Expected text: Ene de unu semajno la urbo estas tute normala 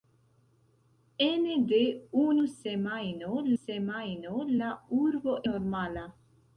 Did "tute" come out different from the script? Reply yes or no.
yes